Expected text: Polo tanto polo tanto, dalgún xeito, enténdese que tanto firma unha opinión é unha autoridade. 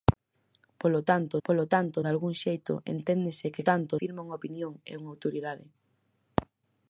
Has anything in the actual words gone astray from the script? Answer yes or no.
no